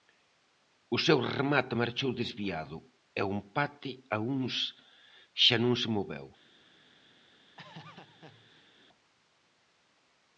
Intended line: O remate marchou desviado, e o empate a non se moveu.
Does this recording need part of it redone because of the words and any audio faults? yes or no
yes